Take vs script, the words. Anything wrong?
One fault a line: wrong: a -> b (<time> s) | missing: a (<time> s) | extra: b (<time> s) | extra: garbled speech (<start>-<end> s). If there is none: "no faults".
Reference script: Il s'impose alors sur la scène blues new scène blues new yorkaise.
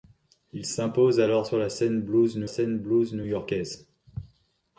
no faults